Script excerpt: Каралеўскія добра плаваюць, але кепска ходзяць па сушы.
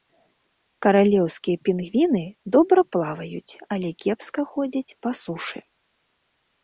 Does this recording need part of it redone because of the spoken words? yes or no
yes